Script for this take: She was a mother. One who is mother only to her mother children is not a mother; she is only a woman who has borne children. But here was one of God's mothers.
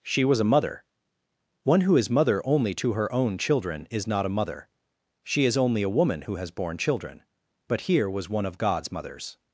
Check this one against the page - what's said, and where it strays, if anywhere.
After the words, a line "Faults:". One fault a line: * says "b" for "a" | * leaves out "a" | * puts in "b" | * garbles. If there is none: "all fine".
She was a mother. One who is mother only to her own children is not a mother; she is only a woman who has borne children. But here was one of God's mothers.
Faults:
* says "own" for "mother"